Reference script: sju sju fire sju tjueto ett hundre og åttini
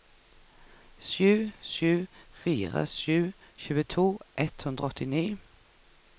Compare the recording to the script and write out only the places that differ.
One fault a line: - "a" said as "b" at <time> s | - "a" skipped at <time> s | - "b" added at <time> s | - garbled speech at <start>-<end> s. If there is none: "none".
none